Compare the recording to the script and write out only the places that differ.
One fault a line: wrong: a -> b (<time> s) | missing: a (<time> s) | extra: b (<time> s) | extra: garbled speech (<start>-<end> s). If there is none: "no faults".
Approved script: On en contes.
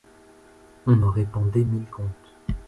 extra: répandait mille (1.1 s)